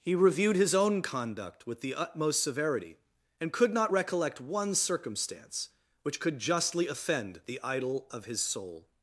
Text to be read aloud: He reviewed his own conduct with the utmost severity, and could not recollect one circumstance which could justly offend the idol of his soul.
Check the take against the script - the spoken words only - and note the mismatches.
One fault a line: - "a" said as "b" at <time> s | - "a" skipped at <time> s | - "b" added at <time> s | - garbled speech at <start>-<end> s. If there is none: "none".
none